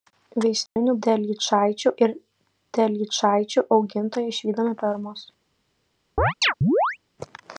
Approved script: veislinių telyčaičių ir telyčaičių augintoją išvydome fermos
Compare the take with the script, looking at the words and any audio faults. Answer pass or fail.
fail